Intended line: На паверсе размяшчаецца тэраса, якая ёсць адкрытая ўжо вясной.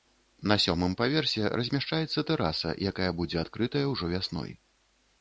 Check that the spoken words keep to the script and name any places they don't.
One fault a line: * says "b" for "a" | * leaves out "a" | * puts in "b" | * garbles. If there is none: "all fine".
* puts in "сёмым"
* says "будзе" for "ёсць"